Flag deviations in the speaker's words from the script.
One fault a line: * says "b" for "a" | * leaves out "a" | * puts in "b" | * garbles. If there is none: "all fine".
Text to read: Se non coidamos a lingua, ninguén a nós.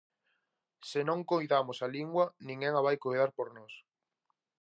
* puts in "vai coidar por"